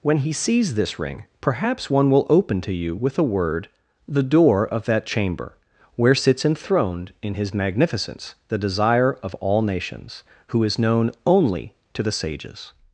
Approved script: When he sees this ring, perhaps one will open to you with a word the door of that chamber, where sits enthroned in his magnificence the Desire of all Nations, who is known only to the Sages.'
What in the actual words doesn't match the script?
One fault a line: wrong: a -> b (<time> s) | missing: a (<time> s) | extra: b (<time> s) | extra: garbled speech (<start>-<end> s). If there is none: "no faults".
no faults